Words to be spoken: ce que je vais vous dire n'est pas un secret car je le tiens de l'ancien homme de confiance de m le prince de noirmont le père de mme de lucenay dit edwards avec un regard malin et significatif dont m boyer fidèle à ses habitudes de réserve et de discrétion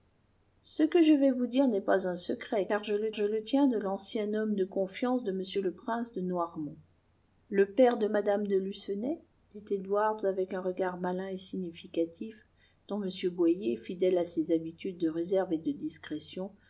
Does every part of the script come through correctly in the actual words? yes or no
no